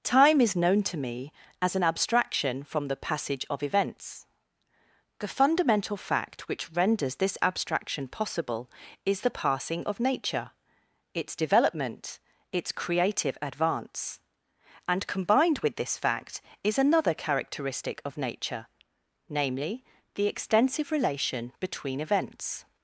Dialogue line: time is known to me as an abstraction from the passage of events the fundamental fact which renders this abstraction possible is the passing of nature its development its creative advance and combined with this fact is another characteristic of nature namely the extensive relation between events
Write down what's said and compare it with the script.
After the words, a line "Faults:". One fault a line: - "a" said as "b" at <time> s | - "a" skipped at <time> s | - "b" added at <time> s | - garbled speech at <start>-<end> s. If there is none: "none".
time is known to me as an abstraction from the passage of events the fundamental fact which renders this abstraction possible is the passing of nature its development its creative advance and combined with this fact is another characteristic of nature namely the extensive relation between events
Faults:
none